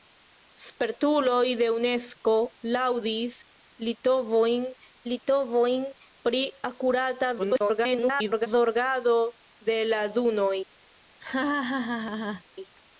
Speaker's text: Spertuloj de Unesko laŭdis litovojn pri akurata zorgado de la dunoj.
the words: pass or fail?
fail